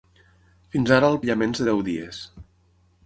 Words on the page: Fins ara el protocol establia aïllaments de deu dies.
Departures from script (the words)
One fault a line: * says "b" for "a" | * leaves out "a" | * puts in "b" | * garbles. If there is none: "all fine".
* leaves out "protocol establia"